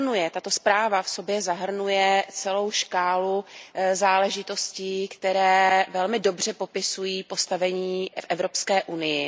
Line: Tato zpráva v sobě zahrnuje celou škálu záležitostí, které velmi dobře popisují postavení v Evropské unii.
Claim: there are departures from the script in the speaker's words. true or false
false